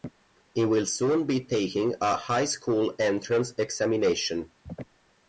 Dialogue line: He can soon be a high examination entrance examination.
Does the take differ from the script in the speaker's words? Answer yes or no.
yes